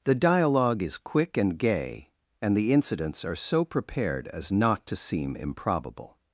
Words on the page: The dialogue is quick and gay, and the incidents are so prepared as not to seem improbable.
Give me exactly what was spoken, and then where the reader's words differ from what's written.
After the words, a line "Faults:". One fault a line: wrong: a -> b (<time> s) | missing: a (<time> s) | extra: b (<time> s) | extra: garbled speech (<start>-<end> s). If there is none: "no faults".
The dialogue is quick and gay, and the incidents are so prepared as not to seem improbable.
Faults:
no faults